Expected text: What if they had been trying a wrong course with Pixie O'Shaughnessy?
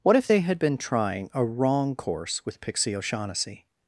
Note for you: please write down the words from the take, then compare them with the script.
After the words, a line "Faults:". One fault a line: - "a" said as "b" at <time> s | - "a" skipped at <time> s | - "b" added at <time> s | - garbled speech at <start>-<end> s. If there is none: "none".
What if they had been trying a wrong course with Pixie O'Shaughnessy?
Faults:
none